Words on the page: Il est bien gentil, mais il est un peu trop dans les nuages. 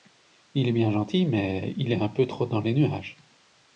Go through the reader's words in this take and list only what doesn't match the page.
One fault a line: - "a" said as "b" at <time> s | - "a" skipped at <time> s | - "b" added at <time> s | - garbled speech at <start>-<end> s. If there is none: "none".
none